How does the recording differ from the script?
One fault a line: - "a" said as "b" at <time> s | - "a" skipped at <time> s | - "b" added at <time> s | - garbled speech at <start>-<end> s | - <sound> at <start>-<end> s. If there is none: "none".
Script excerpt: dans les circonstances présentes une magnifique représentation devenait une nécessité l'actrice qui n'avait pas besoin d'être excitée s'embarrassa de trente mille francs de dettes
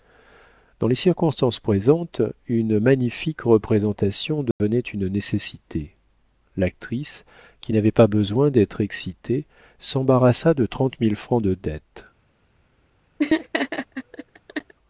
- dropout at 4.5-4.6 s
- laugh at 13.2-14.7 s